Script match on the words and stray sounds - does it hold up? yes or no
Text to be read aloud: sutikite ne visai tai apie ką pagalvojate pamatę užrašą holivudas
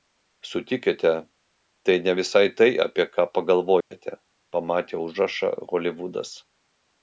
no